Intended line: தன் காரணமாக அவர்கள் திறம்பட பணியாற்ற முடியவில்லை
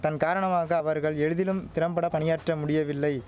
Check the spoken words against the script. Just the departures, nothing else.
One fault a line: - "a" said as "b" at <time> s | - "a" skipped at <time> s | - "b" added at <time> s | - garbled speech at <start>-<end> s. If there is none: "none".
- "எளிதிலும்" added at 1.2 s